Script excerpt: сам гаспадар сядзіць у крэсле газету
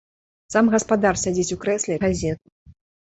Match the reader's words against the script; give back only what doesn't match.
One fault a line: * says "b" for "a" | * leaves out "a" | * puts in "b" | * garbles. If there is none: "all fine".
all fine